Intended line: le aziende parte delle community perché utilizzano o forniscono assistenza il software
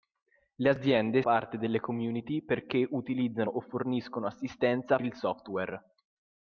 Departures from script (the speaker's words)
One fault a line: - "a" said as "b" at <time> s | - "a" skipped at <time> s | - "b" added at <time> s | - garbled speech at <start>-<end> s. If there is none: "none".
none